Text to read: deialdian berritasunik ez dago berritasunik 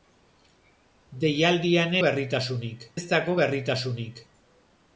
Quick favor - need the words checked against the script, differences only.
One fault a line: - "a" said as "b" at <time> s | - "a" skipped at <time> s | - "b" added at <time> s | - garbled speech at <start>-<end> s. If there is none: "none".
none